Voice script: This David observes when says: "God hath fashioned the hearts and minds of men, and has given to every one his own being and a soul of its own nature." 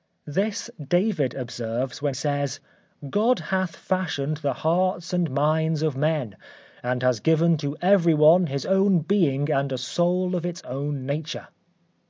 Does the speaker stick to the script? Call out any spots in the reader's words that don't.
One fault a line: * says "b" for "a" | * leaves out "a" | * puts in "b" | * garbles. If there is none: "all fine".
all fine